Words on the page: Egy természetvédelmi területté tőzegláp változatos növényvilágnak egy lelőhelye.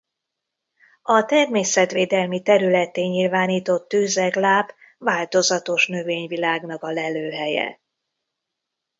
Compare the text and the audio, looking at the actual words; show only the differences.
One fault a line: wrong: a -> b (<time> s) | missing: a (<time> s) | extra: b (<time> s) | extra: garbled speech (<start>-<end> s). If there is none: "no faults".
wrong: Egy -> A (1.0 s)
extra: nyilvánított (3.0 s)
wrong: egy -> a (6.8 s)